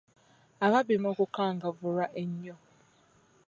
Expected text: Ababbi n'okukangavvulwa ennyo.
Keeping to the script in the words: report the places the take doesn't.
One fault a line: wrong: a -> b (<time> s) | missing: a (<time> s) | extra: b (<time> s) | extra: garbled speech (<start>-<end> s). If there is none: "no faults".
no faults